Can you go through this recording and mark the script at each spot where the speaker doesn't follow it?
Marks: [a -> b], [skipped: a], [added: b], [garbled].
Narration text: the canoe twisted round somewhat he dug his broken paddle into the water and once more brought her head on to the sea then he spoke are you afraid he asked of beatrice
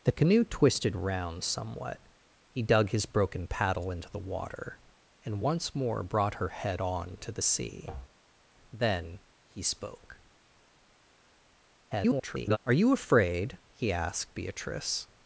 the canoe twisted round somewhat he dug his broken paddle into the water and once more brought her head on to the sea then he spoke [garbled] are you afraid he asked [skipped: of] beatrice